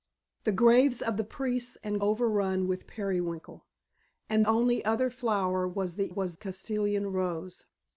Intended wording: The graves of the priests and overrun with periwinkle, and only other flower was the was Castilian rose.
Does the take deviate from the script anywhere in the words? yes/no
no